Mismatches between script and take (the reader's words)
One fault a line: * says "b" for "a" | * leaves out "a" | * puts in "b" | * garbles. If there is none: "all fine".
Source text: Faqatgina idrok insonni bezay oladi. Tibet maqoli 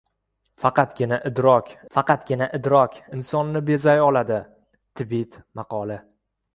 * puts in "faqatgina idrok"